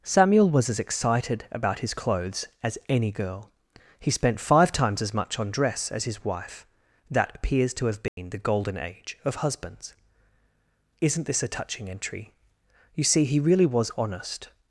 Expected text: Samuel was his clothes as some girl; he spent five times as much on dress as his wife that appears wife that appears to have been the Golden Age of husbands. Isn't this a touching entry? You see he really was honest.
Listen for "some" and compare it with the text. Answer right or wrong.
wrong